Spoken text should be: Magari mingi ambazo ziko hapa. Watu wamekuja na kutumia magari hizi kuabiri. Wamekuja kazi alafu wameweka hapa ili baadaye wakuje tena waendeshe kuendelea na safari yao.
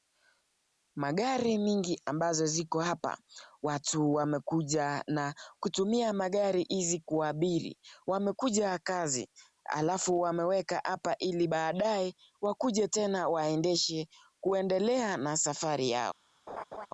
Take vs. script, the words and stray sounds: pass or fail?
fail